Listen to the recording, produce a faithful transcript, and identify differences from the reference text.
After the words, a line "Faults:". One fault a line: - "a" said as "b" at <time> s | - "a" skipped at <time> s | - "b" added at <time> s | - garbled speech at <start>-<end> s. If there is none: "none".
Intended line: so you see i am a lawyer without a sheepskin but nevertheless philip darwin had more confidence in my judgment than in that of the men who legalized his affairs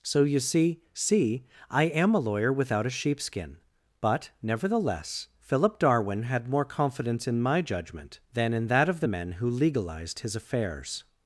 so you see see i am a lawyer without a sheepskin but nevertheless philip darwin had more confidence in my judgment than in that of the men who legalized his affairs
Faults:
- "see" added at 0.9 s